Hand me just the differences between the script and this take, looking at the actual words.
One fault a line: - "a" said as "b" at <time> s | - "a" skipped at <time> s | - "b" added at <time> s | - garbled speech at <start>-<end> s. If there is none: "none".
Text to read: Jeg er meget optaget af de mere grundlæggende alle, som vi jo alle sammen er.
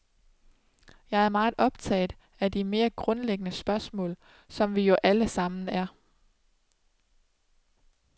- "alle" said as "spørgsmål" at 3.5 s